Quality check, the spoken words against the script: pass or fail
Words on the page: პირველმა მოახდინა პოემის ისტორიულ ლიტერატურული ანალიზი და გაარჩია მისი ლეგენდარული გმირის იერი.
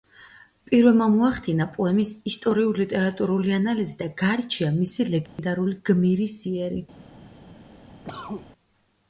pass